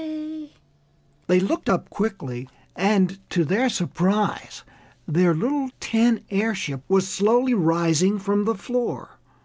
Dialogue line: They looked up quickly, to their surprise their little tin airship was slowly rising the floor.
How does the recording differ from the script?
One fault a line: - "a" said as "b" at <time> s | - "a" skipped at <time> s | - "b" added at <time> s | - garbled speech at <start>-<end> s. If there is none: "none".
- "and" added at 2.7 s
- "from" added at 8.2 s